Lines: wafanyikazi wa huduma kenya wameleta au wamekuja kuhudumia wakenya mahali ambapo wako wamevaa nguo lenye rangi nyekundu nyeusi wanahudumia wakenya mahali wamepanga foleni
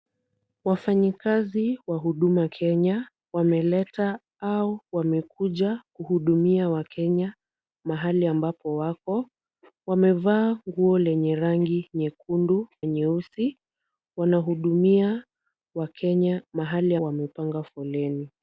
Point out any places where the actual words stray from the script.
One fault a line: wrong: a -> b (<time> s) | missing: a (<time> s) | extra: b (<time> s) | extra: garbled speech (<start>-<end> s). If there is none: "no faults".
no faults